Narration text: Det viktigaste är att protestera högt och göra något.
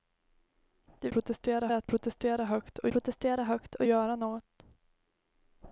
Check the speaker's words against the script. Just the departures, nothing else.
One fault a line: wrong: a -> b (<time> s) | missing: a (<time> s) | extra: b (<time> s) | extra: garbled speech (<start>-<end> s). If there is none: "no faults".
wrong: viktigaste -> protestera (1.1 s)
extra: protestera högt och (2.9 s)